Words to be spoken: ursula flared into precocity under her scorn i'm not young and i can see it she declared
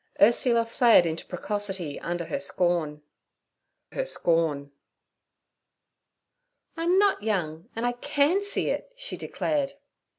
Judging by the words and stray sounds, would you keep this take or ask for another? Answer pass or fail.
fail